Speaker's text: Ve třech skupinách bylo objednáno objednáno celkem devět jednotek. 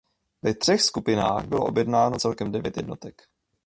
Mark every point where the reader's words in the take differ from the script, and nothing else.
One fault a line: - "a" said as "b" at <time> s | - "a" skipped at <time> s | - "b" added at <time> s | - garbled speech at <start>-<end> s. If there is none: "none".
- "objednáno" skipped at 2.2 s